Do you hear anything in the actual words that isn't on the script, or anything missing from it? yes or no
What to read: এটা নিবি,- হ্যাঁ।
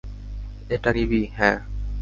no